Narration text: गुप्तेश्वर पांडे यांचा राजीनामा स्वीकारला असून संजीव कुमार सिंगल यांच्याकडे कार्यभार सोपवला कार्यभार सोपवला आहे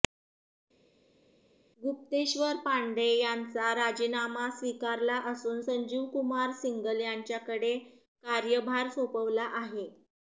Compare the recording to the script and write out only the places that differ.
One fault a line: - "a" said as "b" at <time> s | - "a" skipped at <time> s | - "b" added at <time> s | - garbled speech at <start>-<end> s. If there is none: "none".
- "कार्यभार सोपवला" skipped at 9.5 s